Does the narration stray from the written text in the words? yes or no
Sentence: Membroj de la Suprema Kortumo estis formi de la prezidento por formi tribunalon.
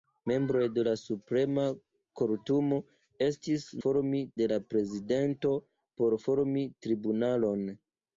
no